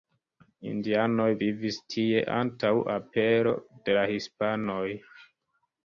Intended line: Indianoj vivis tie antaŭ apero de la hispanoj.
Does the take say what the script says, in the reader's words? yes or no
yes